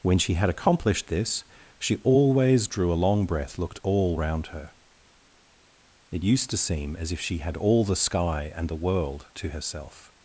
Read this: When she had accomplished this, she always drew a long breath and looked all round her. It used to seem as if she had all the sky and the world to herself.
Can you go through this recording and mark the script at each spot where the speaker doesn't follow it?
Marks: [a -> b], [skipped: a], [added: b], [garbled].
When she had accomplished this, she always drew a long breath [skipped: and] looked all round her. It used to seem as if she had all the sky and the world to herself.